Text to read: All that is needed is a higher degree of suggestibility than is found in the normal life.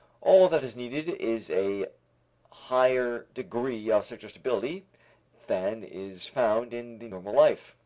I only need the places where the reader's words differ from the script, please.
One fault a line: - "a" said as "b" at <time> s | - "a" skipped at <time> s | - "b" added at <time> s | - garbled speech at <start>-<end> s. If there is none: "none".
none